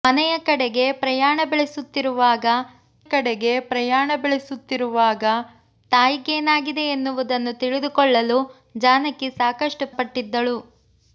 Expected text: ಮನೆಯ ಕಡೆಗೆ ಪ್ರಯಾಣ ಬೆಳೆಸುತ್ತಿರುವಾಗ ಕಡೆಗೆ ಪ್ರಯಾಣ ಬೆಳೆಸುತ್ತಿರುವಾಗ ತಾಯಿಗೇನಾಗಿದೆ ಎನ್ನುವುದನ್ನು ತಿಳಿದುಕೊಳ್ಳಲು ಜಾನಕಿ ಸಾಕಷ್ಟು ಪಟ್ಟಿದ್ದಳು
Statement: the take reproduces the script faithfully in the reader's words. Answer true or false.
true